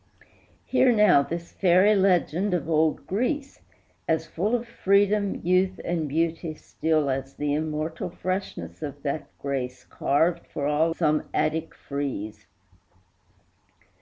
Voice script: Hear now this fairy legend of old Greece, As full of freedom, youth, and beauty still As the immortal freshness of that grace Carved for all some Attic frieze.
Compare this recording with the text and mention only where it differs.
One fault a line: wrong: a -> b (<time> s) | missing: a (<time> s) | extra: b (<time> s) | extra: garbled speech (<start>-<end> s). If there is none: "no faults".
no faults